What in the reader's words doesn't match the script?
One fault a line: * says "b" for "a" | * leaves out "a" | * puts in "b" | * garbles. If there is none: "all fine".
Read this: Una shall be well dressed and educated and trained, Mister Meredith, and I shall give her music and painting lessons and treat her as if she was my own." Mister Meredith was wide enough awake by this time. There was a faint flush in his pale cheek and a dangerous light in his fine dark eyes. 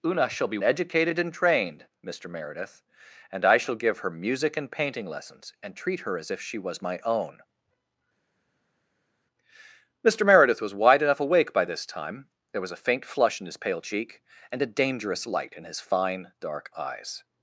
* leaves out "well dressed and"